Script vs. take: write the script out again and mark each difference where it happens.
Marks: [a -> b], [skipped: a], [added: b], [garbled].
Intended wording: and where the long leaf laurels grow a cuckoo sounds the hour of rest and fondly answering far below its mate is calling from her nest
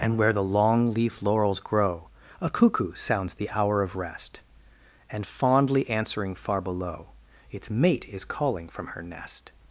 and where the long leaf laurels grow a cuckoo sounds the hour of rest and fondly answering far below its mate is calling from her nest